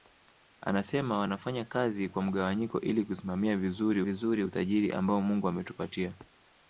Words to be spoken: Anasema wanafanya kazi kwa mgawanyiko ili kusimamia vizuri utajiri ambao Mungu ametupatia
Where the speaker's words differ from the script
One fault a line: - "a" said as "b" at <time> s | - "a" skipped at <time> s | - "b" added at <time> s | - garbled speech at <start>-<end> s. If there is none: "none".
- "vizuri" added at 4.0 s